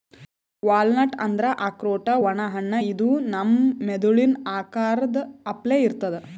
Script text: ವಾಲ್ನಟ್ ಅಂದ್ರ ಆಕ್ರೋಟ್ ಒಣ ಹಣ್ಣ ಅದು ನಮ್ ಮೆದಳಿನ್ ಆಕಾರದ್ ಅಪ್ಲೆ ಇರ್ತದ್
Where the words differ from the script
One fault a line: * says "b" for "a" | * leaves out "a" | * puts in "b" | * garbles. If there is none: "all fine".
* says "ಇದು" for "ಅದು"